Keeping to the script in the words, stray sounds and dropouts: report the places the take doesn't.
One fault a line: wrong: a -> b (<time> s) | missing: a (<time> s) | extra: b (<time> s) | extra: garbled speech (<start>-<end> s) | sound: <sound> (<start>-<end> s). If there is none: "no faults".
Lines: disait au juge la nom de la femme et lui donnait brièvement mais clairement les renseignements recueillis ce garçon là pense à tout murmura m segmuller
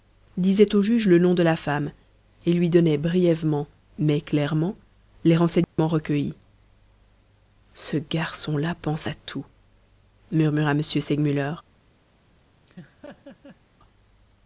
wrong: la -> le (1.1 s)
sound: dropout (5.6-5.8 s)
sound: laugh (12.7-13.6 s)